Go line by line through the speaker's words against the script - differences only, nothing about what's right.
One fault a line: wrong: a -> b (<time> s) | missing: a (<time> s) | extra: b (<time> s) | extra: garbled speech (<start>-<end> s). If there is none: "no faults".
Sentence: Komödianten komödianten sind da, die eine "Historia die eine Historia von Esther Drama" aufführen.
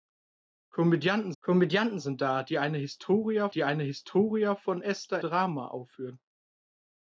no faults